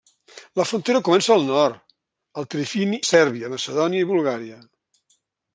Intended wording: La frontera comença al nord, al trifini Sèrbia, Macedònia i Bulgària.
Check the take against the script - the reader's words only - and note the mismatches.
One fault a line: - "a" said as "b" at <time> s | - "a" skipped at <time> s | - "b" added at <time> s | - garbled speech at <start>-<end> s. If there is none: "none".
none